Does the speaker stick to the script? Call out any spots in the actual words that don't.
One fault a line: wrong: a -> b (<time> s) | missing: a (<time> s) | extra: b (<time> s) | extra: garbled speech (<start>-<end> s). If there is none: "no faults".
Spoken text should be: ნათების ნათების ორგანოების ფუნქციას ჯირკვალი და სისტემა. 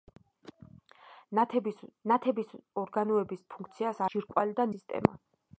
no faults